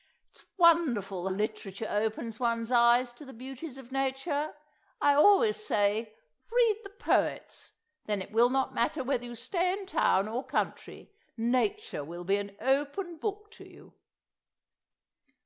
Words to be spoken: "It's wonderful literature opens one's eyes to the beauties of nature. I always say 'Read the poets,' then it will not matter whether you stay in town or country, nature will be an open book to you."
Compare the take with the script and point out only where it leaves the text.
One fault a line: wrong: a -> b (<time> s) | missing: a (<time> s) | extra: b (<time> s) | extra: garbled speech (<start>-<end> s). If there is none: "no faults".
no faults